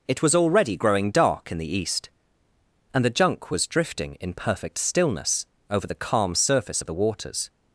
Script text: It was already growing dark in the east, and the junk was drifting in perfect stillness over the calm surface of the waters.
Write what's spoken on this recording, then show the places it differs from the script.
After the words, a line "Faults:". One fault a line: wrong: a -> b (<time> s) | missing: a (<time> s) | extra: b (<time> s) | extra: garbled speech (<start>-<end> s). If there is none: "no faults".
It was already growing dark in the east, and the junk was drifting in perfect stillness over the calm surface of the waters.
Faults:
no faults